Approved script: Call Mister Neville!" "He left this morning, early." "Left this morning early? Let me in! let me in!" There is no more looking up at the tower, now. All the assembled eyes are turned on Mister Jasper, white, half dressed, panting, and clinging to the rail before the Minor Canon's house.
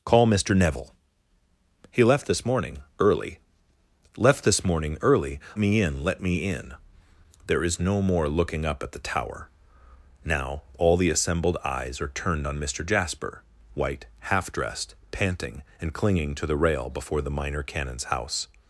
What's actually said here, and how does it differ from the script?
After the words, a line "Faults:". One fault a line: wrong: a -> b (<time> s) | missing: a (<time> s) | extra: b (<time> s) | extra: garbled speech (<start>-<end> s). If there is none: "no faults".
Call Mister Neville!" "He left this morning, early." "Left this morning early? Me in! let me in!" There is no more looking up at the tower, now. All the assembled eyes are turned on Mister Jasper, white, half dressed, panting, and clinging to the rail before the Minor Canon's house.
Faults:
missing: Let (5.4 s)